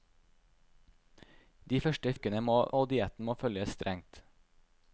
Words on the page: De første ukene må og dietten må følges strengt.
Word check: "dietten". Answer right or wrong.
right